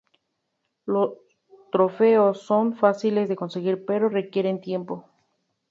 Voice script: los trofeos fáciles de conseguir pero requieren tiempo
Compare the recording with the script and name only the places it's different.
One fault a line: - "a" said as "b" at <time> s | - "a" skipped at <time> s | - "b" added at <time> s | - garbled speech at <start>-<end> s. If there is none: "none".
- "son" added at 2.4 s